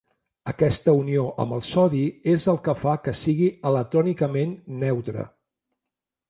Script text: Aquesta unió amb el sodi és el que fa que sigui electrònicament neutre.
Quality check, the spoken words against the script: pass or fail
pass